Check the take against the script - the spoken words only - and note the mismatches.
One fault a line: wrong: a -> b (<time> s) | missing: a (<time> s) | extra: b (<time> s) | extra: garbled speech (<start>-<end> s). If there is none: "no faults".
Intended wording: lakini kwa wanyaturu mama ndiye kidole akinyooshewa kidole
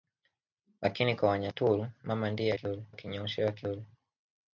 no faults